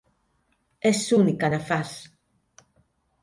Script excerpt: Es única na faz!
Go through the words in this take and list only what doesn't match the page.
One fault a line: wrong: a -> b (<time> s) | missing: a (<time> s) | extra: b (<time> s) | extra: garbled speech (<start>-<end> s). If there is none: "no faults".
no faults